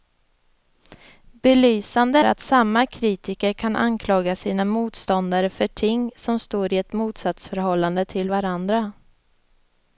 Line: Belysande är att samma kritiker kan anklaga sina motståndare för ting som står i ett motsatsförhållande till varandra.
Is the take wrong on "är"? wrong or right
wrong